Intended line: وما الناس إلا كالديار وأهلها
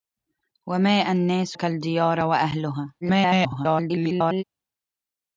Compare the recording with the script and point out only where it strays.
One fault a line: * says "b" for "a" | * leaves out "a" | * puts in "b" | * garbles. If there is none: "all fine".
* leaves out "إلا"
* garbles